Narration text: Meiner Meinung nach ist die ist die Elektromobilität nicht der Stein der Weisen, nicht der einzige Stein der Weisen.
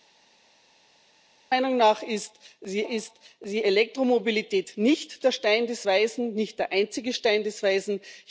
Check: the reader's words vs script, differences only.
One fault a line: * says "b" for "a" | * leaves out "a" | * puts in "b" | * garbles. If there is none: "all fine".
all fine